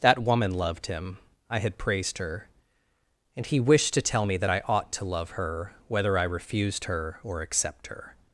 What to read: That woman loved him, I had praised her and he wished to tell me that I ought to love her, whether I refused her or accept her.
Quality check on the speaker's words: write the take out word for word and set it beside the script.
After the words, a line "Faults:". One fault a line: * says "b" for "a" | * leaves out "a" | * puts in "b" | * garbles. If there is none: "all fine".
That woman loved him, I had praised her and he wished to tell me that I ought to love her, whether I refused her or accept her.
Faults:
all fine